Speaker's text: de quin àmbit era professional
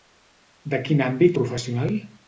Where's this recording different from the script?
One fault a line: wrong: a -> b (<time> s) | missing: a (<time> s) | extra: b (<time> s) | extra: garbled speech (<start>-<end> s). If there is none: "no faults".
missing: era (1.4 s)